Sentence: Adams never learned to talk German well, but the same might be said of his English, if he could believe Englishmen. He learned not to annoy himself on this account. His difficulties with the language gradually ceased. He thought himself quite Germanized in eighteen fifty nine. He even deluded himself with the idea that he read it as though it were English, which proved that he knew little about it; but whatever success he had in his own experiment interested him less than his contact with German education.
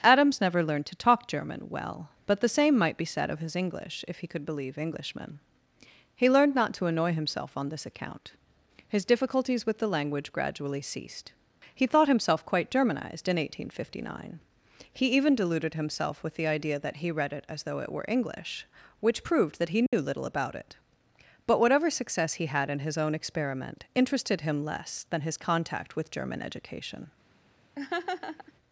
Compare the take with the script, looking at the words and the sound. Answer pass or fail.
fail